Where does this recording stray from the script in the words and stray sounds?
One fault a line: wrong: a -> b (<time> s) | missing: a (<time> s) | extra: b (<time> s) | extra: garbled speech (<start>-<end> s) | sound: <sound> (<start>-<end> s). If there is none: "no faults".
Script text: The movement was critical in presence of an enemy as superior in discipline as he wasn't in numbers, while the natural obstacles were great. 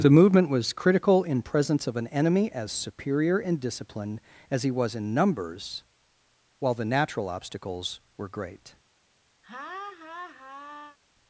wrong: wasn't -> was (4.7 s)
sound: laugh (9.4-11.0 s)